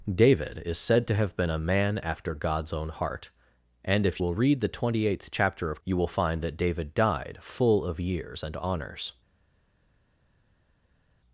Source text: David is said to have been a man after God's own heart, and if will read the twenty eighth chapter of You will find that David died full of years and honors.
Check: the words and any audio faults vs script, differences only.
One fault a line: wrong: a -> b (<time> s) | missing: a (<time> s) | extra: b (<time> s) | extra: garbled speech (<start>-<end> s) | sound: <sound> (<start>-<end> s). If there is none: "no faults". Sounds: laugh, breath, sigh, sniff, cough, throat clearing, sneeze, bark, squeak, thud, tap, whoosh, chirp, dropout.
no faults